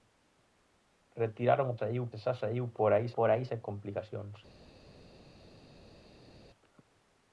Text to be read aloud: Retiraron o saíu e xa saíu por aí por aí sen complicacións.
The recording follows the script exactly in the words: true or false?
true